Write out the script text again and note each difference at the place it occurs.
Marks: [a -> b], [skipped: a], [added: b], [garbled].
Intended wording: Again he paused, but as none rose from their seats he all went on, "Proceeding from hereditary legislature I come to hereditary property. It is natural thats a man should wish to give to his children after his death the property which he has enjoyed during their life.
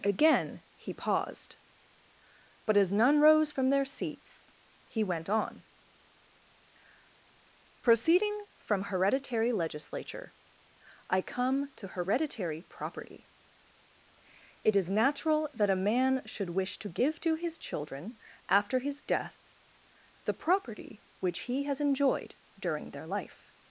Again he paused, but as none rose from their seats he [skipped: all] went on, "Proceeding from hereditary legislature I come to hereditary property. It is natural [thats -> that] a man should wish to give to his children after his death the property which he has enjoyed during their life.